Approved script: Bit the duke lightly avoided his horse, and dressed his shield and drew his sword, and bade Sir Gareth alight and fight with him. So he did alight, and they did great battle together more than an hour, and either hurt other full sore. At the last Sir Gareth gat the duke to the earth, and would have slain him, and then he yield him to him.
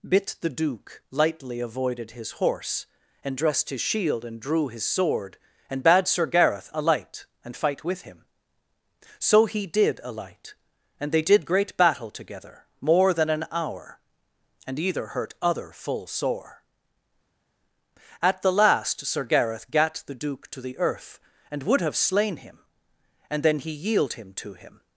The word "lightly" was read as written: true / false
true